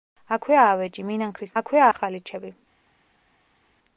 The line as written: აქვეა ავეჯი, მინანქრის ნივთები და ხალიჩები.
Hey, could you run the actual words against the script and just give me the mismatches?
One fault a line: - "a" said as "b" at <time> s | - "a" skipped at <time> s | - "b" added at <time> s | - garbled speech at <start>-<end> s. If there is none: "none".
- "ნივთები" said as "აქვეა" at 1.6 s